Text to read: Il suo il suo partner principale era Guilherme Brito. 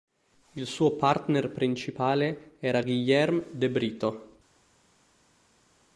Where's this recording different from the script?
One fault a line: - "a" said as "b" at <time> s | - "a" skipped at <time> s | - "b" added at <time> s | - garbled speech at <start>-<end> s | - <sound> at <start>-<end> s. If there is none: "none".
- "il suo" skipped at 0.9 s
- "de" added at 3.5 s